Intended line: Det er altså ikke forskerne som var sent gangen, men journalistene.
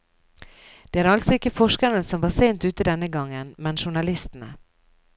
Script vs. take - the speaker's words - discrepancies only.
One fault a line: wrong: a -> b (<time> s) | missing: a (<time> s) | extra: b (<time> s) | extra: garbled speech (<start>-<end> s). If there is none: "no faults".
extra: ute denne (2.6 s)